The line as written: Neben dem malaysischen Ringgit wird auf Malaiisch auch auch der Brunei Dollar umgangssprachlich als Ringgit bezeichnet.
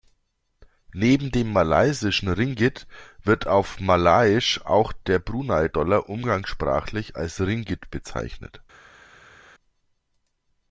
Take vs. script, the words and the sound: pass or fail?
fail